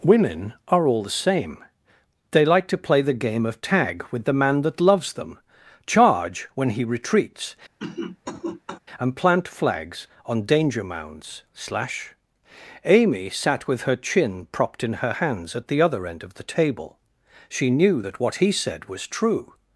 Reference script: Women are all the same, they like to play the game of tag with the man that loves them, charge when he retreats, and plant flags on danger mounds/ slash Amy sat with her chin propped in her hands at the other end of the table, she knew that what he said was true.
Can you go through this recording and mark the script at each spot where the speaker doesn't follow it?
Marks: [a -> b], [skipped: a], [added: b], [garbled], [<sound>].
Women are all the same, they like to play the game of tag with the man that loves them, charge when he retreats, [cough] and plant flags on danger mounds/ slash Amy sat with her chin propped in her hands at the other end of the table, she knew that what he said was true.